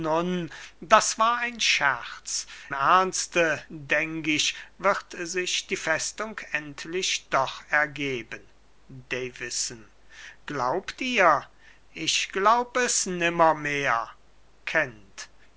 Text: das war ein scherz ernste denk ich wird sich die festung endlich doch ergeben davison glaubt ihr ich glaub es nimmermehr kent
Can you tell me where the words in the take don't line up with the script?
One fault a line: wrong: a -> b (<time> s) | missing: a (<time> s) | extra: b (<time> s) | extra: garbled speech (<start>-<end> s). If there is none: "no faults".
no faults